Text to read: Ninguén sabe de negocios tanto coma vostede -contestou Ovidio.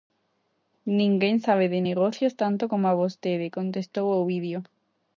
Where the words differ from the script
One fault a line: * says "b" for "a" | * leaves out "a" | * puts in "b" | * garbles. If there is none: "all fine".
all fine